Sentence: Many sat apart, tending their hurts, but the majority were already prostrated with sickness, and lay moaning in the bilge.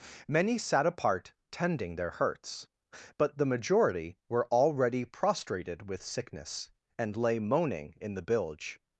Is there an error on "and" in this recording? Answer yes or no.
no